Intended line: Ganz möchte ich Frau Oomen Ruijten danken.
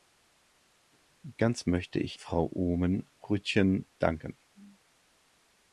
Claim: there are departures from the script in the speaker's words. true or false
false